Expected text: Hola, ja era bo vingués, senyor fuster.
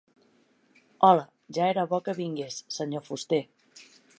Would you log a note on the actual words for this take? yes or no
yes